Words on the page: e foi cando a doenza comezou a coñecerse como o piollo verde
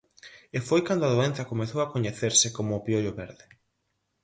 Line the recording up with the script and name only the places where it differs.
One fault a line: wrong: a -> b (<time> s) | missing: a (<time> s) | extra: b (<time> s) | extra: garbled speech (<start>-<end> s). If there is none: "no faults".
no faults